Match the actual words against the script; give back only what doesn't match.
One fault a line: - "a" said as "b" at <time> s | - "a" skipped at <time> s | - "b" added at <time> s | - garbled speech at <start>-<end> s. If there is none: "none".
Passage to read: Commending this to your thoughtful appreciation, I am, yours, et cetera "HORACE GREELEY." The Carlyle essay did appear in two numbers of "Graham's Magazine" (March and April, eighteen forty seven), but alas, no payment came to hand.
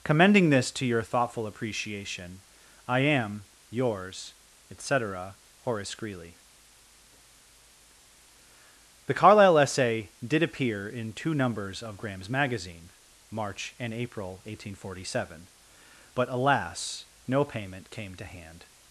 none